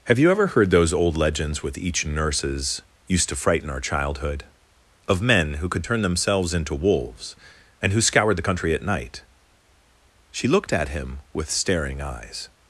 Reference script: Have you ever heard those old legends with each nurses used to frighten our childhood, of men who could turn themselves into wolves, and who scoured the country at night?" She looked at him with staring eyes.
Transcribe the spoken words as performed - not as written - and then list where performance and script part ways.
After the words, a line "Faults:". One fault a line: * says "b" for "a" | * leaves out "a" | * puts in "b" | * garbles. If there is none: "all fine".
Have you ever heard those old legends with each nurses used to frighten our childhood, of men who could turn themselves into wolves, and who scoured the country at night?" She looked at him with staring eyes.
Faults:
all fine